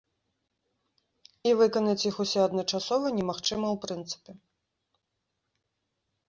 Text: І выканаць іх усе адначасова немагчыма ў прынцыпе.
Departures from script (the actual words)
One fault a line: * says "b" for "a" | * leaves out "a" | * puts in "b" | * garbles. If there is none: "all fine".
all fine